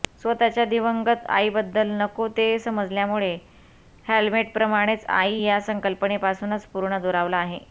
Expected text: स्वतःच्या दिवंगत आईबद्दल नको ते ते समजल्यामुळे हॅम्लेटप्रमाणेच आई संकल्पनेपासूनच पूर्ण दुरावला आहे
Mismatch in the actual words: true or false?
true